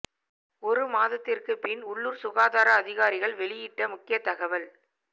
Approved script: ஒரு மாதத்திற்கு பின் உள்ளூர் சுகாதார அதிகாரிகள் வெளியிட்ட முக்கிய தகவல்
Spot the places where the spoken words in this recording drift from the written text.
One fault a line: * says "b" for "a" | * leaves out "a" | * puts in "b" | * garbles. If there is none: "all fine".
all fine